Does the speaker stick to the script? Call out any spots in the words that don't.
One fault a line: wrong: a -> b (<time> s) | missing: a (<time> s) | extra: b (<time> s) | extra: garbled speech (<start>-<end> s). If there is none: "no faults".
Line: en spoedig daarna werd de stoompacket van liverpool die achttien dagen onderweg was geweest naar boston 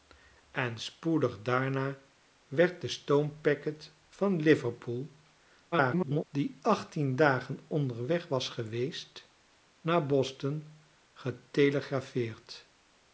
extra: garbled speech (5.7-6.3 s)